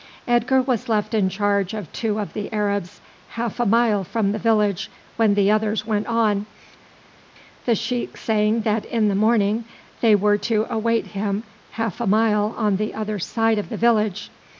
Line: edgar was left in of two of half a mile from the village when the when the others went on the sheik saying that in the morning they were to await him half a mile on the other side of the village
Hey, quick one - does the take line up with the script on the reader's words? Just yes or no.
no